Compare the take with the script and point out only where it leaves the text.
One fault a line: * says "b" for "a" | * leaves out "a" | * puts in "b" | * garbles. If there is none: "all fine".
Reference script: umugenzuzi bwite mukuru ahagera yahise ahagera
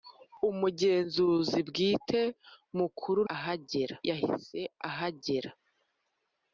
all fine